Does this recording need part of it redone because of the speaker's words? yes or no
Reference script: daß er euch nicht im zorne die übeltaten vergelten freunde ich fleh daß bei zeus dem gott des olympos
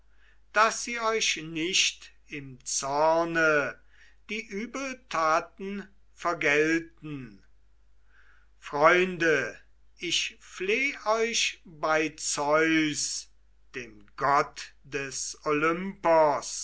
yes